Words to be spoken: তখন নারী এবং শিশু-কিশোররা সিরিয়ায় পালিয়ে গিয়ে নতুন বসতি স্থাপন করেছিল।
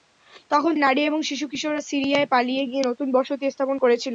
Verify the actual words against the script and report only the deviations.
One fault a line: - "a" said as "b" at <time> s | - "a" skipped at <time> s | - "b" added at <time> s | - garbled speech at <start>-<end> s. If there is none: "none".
none